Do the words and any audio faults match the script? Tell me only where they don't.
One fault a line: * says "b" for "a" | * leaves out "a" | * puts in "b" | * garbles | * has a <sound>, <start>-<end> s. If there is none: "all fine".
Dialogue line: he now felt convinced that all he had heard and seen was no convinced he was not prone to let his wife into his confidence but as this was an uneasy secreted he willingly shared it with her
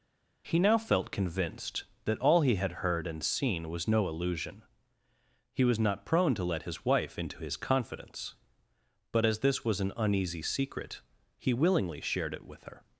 * says "illusion" for "convinced"
* says "secret" for "secreted"